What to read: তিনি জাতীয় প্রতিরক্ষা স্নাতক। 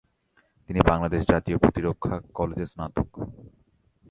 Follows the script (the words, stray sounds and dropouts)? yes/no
no